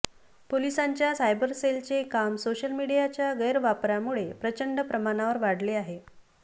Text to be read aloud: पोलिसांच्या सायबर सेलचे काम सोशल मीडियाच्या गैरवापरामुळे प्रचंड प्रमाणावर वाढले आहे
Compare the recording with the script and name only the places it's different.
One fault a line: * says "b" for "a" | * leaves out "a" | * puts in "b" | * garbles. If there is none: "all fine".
all fine